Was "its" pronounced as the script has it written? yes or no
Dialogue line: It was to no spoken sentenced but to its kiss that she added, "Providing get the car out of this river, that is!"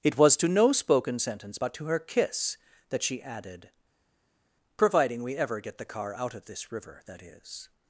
no